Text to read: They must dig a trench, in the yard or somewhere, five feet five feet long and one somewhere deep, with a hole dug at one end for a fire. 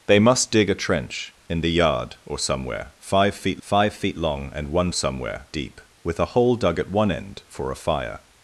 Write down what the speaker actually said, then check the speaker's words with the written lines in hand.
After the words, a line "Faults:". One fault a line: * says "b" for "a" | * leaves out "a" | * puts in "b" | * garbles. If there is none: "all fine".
They must dig a trench, in the yard or somewhere, five feet five feet long and one somewhere deep, with a hole dug at one end for a fire.
Faults:
all fine